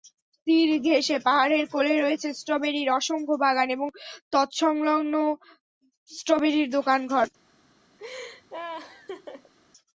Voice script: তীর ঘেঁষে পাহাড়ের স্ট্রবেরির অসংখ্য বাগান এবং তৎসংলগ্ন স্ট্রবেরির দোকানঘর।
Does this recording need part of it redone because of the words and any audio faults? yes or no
yes